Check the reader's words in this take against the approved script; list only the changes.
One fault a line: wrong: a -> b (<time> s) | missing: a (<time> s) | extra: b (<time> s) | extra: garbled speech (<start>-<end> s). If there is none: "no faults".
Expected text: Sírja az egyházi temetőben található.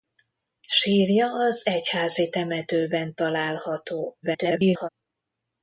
extra: garbled speech (4.2-4.9 s)